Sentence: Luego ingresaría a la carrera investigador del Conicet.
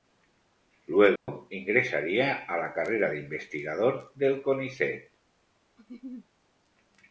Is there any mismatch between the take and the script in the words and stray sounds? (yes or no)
yes